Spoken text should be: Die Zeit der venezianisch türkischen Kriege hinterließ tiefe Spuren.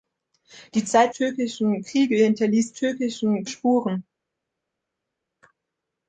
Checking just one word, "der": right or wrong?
wrong